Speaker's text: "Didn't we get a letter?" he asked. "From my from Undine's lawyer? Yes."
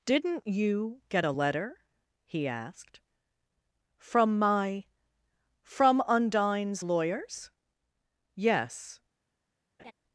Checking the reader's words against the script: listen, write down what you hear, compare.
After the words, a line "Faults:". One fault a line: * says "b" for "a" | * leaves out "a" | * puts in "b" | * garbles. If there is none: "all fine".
"Didn't you get a letter?" he asked. "From my from Undine's lawyers? Yes."
Faults:
* says "you" for "we"
* says "lawyers" for "lawyer"